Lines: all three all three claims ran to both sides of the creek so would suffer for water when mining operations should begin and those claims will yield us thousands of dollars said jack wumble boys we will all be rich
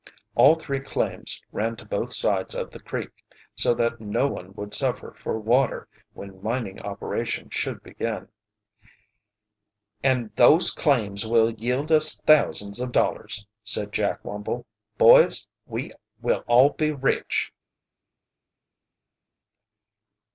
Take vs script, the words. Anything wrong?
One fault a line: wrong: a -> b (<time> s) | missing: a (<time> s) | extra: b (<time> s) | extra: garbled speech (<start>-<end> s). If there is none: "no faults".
missing: all three (0.8 s)
extra: that no one (3.8 s)